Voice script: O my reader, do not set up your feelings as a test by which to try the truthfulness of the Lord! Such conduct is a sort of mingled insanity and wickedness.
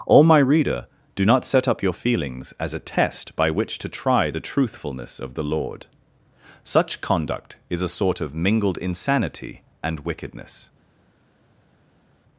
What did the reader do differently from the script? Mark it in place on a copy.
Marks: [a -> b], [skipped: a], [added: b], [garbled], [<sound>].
O my reader, do not set up your feelings as a test by which to try the truthfulness of the Lord! Such conduct is a sort of mingled insanity and wickedness.